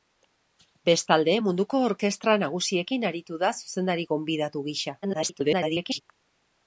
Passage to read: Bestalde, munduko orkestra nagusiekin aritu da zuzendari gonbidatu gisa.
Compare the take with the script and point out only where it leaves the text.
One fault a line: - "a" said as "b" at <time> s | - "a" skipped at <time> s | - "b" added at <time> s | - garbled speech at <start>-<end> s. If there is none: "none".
- garbled speech at 5.0-6.0 s